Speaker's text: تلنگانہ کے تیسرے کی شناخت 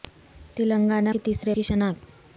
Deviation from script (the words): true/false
false